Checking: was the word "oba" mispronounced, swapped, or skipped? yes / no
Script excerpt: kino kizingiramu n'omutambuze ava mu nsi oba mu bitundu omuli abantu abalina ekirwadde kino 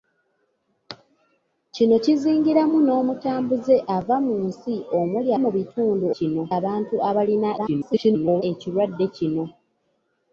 yes